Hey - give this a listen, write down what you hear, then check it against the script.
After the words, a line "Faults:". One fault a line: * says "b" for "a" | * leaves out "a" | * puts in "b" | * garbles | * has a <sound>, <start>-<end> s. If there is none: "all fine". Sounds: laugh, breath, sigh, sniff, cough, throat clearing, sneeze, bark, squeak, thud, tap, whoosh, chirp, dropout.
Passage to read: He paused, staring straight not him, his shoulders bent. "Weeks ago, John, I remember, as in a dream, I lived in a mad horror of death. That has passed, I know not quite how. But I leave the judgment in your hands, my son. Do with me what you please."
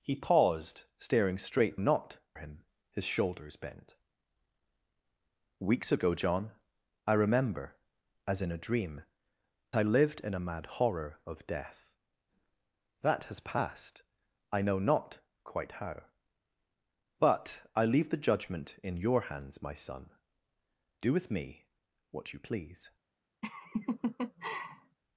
He paused, staring straight not him, his shoulders bent. "Weeks ago, John, I remember, as in a dream, I lived in a mad horror of death. That has passed, I know not quite how. But I leave the judgment in your hands, my son. Do with me what you please."
Faults:
* has a laugh, 23.4-25.0 s